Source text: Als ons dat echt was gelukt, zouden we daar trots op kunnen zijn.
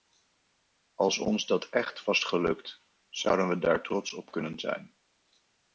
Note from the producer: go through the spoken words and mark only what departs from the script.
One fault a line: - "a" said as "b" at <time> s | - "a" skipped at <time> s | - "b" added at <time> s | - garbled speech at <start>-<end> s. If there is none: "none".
none